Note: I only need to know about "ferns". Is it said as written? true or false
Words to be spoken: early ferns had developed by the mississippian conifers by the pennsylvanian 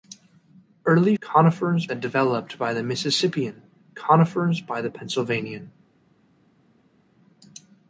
false